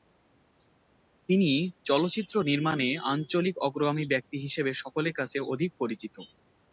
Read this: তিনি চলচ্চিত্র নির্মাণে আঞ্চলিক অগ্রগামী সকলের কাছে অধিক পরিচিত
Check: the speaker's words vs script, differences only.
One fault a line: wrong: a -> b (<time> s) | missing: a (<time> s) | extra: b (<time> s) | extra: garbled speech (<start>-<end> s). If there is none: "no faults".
extra: ব্যক্তি হিসেবে (4.1 s)